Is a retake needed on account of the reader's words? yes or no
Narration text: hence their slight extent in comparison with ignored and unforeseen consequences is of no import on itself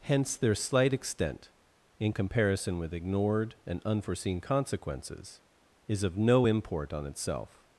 no